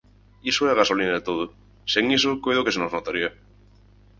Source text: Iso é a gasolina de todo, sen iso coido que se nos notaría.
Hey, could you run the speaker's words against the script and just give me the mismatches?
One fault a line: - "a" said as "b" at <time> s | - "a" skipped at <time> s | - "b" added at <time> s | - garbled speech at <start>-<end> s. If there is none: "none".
none